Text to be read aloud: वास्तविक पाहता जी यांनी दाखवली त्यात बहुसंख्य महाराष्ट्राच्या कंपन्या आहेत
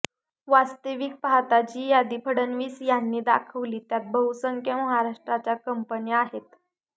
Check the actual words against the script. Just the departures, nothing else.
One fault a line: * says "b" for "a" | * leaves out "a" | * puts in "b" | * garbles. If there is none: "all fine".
* puts in "यादी फडणवीस"